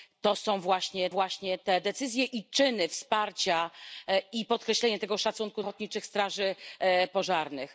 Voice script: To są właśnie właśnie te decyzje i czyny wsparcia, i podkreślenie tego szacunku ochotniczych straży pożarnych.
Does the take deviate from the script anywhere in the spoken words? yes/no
no